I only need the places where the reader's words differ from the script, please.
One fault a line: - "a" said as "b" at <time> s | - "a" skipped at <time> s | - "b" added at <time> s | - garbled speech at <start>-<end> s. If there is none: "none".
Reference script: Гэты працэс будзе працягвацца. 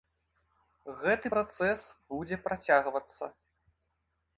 none